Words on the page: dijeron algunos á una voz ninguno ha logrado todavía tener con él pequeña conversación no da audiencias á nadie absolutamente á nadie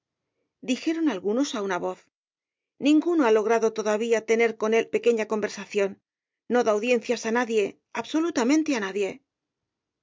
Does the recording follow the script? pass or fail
pass